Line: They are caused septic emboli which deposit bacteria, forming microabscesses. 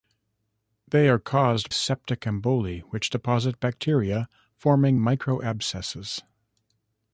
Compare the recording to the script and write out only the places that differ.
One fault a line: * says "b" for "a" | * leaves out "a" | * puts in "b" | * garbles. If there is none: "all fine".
all fine